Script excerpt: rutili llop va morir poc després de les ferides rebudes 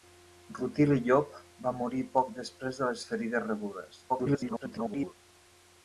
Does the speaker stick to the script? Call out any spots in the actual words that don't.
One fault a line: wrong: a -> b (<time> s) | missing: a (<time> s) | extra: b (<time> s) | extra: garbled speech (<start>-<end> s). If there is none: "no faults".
extra: garbled speech (4.1-5.1 s)